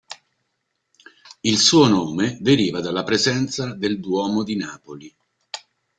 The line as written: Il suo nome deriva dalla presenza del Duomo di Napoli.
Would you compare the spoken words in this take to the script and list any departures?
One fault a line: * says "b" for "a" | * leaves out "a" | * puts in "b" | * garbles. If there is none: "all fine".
all fine